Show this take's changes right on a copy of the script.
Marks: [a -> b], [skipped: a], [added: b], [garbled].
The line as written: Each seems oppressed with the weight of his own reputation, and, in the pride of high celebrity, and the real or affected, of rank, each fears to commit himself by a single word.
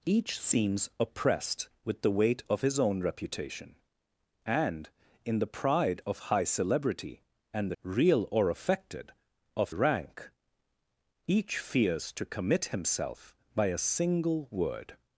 Each seems oppressed with the weight of his own reputation, and, in the pride of high celebrity, and the real or affected, of rank, each fears to commit himself by a single word.